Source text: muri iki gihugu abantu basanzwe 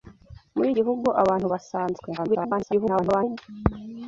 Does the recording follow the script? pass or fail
fail